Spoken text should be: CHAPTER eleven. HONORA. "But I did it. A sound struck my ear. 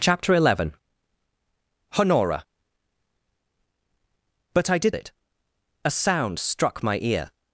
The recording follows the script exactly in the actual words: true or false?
true